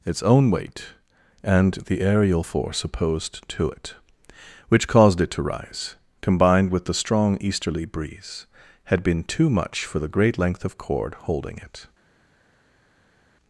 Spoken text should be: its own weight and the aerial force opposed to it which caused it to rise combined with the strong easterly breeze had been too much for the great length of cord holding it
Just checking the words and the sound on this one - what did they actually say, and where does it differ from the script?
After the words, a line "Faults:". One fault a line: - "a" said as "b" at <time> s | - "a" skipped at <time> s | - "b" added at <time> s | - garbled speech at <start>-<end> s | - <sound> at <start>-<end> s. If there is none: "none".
its own weight and the aerial force opposed to it which caused it to rise combined with the strong easterly breeze had been too much for the great length of cord holding it
Faults:
none